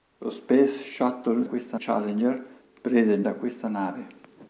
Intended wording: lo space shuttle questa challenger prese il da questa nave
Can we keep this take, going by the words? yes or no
yes